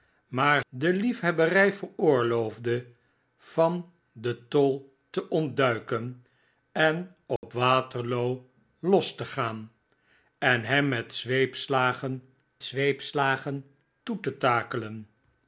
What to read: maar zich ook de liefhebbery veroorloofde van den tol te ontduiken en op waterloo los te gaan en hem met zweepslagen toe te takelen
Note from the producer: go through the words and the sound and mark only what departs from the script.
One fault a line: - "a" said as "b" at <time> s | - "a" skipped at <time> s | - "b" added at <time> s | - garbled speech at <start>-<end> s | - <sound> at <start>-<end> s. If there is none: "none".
- "zich ook" skipped at 0.6 s
- dropout at 7.4-7.4 s
- "zweepslagen" added at 12.6 s